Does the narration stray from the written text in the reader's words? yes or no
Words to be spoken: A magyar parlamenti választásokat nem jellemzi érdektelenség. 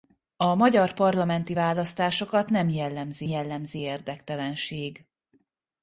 yes